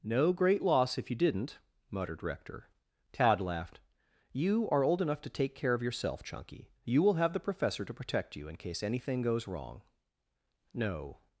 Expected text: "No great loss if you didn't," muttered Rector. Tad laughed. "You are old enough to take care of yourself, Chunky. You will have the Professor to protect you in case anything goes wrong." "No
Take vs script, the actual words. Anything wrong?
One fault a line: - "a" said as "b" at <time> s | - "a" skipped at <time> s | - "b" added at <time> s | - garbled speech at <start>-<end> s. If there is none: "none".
none